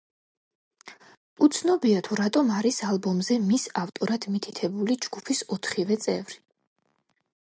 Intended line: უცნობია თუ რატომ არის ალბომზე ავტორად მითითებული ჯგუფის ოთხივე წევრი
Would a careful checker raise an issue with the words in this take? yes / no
yes